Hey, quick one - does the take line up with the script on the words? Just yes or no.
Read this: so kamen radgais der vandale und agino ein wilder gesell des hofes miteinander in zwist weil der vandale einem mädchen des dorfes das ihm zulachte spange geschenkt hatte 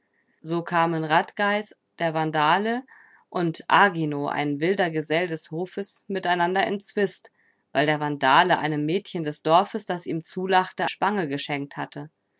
yes